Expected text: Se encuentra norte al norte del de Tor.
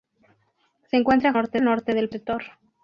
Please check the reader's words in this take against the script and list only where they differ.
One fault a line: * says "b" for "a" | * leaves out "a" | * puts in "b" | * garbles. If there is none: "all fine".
all fine